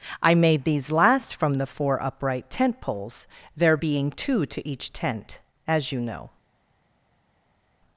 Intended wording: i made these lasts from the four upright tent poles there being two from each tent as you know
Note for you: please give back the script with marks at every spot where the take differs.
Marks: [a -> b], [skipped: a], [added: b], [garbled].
i made these [lasts -> last] from the four upright tent poles there being two [from -> to] each tent as you know